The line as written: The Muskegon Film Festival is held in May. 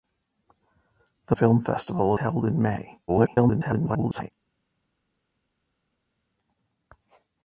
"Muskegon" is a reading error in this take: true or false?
true